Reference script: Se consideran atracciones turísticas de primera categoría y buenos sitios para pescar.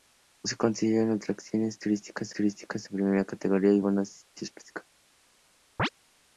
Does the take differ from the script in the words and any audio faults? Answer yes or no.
yes